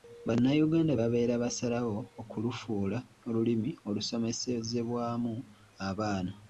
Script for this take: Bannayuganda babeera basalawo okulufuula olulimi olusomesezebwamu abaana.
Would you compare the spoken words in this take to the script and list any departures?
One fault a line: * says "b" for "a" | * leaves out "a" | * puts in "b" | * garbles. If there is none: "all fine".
all fine